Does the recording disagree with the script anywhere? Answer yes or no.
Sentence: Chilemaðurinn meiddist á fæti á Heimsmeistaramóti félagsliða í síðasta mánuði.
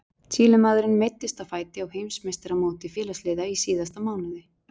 no